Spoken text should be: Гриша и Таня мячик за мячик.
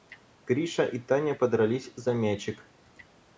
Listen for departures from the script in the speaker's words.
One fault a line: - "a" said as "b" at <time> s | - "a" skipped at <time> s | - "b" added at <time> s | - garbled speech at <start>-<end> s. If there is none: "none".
- "мячик" said as "подрались" at 1.3 s